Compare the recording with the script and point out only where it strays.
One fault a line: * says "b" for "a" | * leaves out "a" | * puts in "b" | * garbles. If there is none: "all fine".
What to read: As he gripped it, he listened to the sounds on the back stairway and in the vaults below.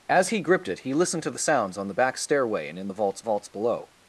* puts in "vaults"